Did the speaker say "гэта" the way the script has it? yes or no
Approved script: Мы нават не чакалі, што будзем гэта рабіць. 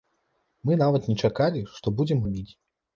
no